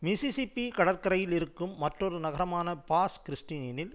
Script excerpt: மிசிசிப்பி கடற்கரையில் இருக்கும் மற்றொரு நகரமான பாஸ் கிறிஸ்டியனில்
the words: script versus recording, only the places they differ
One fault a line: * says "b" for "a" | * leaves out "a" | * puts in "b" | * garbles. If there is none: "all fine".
all fine